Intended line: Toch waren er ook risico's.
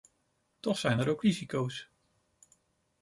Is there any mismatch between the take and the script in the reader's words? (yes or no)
yes